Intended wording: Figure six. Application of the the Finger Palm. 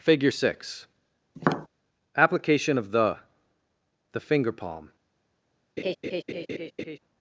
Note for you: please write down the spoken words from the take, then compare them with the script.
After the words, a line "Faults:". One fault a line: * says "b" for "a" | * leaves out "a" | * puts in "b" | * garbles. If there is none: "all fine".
Figure six. Application of the the Finger Palm.
Faults:
all fine